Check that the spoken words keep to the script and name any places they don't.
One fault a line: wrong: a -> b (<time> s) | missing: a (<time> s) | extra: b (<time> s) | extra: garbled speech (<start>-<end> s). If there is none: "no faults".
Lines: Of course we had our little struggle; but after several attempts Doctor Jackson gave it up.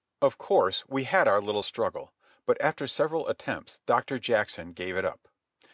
no faults